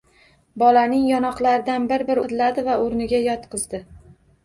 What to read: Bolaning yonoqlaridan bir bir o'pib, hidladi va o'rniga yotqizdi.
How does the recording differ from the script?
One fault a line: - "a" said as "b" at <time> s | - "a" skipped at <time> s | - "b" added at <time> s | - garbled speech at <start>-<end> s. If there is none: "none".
- "o'pib" skipped at 2.2 s